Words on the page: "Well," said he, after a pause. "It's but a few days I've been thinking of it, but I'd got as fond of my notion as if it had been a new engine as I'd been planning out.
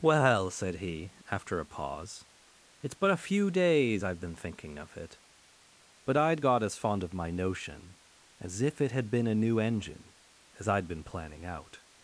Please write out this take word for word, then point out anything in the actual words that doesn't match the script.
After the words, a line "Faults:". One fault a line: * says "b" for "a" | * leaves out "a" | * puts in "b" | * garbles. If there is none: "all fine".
"Well," said he, after a pause. "It's but a few days I've been thinking of it, but I'd got as fond of my notion as if it had been a new engine as I'd been planning out.
Faults:
all fine